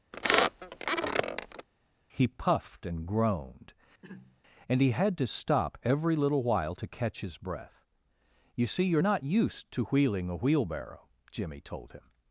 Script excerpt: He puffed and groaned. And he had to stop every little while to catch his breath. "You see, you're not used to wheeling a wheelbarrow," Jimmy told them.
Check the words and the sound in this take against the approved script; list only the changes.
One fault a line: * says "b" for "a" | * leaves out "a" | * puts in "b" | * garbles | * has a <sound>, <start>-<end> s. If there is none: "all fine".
* has a squeak, 0.1-1.7 s
* has a throat clearing, 4.0-4.4 s
* says "him" for "them"